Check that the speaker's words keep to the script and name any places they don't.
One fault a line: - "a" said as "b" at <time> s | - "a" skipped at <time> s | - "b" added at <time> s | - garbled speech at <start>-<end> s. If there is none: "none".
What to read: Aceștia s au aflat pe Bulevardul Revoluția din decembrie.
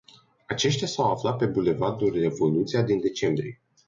none